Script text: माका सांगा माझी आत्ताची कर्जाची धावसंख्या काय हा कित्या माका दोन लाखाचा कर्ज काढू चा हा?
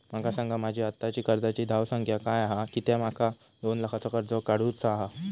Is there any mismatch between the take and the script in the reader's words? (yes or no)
no